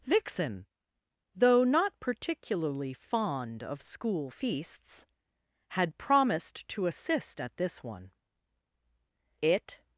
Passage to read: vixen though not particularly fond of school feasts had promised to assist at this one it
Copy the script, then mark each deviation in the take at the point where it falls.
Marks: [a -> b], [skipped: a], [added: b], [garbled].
vixen though not particularly fond of school feasts had promised to assist at this one it